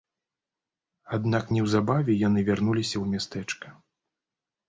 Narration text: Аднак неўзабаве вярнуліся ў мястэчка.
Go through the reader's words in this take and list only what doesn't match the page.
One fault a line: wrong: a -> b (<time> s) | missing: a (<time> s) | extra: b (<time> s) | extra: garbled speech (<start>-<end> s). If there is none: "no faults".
extra: яны (2.3 s)